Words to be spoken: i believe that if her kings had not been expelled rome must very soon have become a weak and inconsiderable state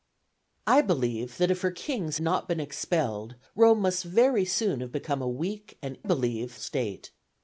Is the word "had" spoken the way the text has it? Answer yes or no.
no